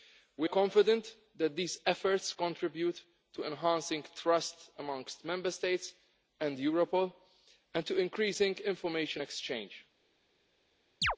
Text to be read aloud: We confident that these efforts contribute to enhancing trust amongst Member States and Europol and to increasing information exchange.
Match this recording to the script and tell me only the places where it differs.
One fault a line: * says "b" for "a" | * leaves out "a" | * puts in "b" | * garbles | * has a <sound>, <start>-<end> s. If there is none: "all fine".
* has a chirp, 11.0-11.2 s